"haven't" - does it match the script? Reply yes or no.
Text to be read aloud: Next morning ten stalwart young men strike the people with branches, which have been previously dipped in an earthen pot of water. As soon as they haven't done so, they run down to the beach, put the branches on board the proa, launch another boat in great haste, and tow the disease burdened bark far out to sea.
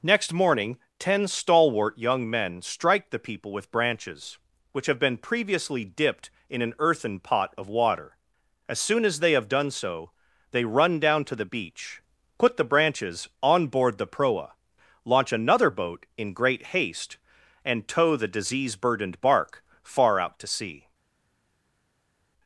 no